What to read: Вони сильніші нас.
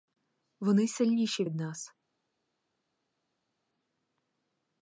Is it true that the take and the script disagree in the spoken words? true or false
true